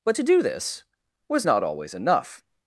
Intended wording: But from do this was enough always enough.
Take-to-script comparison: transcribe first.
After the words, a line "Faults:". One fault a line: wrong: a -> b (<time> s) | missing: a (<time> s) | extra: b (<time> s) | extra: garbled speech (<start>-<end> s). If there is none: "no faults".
But to do this was not always enough.
Faults:
wrong: from -> to (0.1 s)
wrong: enough -> not (1.4 s)